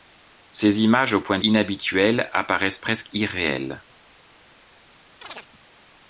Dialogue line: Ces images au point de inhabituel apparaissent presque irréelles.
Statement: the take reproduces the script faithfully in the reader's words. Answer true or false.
true